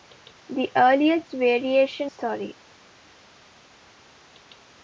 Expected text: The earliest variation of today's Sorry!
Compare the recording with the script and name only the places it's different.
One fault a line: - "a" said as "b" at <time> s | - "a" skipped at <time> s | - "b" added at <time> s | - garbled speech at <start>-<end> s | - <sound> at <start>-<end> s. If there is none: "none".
- "of today's" skipped at 2.1 s